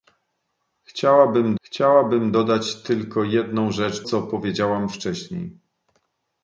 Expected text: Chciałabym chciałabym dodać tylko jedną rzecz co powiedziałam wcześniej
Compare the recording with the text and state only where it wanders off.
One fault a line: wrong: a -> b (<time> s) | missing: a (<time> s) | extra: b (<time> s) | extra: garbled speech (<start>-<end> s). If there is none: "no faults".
no faults